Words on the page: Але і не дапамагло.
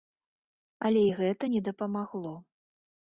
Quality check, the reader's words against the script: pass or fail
fail